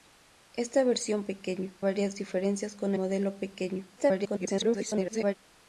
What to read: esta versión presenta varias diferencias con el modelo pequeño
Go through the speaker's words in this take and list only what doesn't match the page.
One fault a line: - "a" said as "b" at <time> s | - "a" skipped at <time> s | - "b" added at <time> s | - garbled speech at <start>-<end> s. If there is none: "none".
- "presenta" said as "pequeño" at 1.3 s
- "el" skipped at 2.9 s
- garbled speech at 4.0-5.4 s